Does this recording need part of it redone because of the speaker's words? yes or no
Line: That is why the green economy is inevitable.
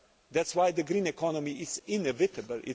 no